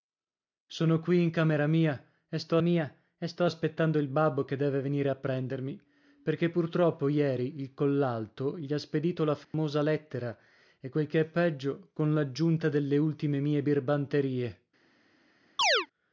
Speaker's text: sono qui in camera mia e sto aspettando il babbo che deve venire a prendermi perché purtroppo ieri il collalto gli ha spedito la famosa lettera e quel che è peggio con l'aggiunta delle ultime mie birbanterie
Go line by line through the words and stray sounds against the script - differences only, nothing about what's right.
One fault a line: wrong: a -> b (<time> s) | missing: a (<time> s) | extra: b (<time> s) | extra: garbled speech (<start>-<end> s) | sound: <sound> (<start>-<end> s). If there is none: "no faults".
extra: mia e sto (2.6 s)
sound: dropout (9.4-9.5 s)
sound: chirp (15.6-15.9 s)